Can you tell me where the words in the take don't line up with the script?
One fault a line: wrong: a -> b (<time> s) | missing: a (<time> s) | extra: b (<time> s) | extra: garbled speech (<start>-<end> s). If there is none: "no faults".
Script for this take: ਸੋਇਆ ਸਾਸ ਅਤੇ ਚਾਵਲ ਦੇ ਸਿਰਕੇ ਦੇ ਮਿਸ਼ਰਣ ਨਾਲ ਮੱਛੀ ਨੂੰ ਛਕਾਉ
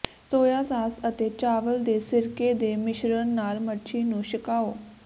no faults